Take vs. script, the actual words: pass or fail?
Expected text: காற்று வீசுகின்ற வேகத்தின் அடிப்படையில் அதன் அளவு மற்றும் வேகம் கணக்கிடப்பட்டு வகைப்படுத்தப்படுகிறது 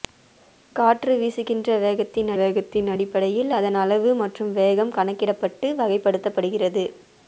fail